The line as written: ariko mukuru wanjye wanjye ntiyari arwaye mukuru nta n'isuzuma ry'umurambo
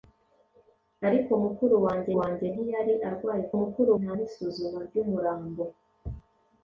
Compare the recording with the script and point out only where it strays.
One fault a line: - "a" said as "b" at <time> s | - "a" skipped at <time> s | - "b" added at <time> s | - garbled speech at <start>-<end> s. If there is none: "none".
none